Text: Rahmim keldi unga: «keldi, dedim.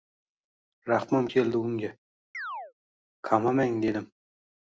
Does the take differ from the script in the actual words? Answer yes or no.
yes